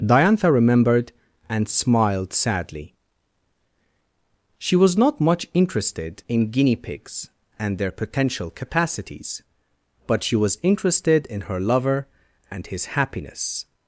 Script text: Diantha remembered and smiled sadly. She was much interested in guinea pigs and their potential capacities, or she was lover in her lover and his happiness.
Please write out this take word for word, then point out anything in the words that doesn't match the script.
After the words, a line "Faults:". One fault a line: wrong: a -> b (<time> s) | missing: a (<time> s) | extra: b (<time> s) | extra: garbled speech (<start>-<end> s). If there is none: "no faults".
Diantha remembered and smiled sadly. She was not much interested in guinea pigs and their potential capacities, but she was interested in her lover and his happiness.
Faults:
extra: not (5.0 s)
wrong: or -> but (10.1 s)
wrong: lover -> interested (10.6 s)